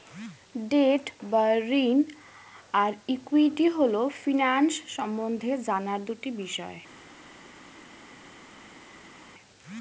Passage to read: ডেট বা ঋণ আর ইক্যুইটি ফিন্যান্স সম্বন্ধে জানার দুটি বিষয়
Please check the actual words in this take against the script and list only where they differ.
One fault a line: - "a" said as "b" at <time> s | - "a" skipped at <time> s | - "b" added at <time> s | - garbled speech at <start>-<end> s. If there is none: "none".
- "হল" added at 3.7 s